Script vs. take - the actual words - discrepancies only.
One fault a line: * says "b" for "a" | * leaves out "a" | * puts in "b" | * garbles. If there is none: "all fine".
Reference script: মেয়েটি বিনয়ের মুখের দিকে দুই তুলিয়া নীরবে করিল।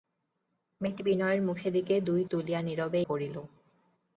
all fine